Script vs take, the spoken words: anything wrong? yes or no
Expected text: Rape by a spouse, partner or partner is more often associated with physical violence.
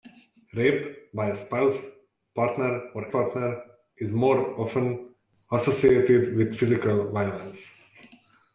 no